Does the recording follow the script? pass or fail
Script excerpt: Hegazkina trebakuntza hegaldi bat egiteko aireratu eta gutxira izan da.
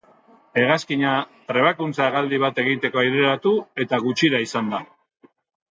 pass